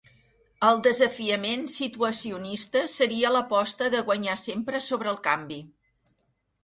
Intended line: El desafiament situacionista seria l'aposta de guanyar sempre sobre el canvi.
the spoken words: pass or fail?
pass